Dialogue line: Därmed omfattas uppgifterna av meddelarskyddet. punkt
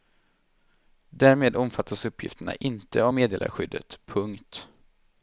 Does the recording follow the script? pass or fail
fail